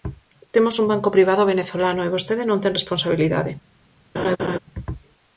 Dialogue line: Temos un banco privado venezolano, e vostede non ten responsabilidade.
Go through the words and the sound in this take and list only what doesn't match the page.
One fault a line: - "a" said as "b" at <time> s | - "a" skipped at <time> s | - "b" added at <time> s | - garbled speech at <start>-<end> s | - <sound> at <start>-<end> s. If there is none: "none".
- laugh at 4.1-4.6 s